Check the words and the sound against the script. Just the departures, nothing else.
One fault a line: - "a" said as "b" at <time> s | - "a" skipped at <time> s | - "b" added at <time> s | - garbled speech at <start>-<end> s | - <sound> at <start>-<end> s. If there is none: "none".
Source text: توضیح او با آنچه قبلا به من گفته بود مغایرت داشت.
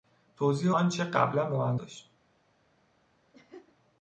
- "او با" skipped at 0.7 s
- "گفته بود مغایرت" skipped at 1.8 s
- laugh at 3.3-3.8 s